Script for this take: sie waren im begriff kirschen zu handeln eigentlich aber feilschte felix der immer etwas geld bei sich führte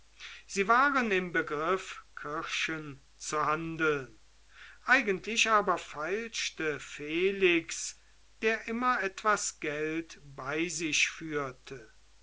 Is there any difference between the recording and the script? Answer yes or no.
no